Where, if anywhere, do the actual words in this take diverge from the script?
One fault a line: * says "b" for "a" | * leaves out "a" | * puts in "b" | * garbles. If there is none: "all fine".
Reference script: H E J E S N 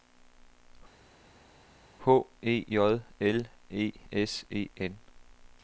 * puts in "L"
* puts in "E"